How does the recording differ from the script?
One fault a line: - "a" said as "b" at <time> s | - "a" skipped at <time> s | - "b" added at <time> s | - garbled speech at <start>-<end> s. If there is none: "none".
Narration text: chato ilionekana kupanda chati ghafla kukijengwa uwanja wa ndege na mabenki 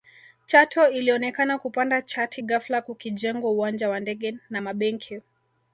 none